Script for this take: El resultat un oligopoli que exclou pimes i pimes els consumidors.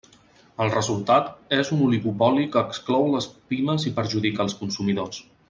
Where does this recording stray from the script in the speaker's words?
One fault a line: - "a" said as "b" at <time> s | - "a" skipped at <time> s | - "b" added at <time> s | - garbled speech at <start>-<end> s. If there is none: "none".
- "és" added at 1.6 s
- "les" added at 3.2 s
- "pimes" said as "perjudica" at 4.0 s